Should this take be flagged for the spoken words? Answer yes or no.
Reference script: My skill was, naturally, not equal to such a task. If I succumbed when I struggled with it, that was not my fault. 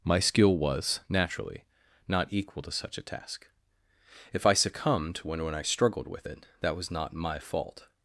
yes